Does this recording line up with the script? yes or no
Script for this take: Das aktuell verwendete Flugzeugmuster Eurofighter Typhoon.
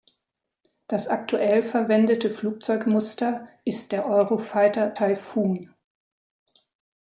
no